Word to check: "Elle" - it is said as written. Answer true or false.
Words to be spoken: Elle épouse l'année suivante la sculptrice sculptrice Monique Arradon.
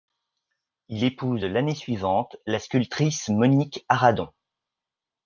false